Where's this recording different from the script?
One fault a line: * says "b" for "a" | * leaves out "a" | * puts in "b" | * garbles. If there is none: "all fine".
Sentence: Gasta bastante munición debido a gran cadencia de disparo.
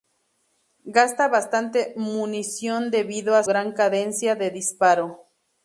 all fine